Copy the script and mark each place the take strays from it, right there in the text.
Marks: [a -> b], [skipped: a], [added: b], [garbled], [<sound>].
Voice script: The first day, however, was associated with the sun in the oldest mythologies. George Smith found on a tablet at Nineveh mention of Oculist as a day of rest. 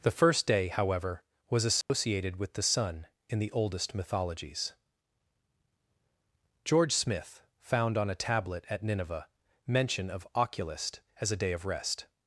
The first day, however, was associated [dropout] with the sun in the oldest mythologies. George Smith found on a tablet at Nineveh mention of Oculist as a day of rest.